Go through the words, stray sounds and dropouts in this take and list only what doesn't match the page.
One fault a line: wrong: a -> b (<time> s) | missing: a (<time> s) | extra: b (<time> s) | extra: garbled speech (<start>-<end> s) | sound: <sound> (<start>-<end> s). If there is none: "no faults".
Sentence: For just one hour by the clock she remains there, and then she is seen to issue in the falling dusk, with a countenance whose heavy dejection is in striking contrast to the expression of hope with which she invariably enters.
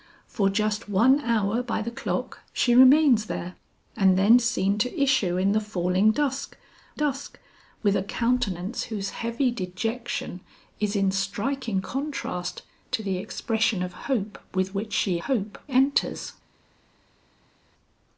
missing: she (4.4 s)
extra: dusk (6.9 s)
wrong: invariably -> hope (15.3 s)